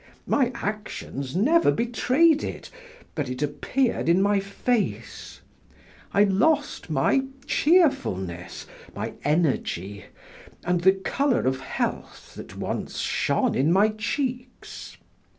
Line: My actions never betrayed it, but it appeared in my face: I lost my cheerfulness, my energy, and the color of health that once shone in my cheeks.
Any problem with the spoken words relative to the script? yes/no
no